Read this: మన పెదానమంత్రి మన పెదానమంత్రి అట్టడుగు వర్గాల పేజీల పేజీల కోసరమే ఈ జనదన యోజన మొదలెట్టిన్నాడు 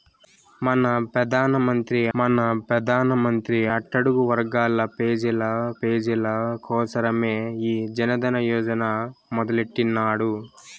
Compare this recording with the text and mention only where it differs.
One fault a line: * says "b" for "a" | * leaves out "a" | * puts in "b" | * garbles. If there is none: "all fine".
all fine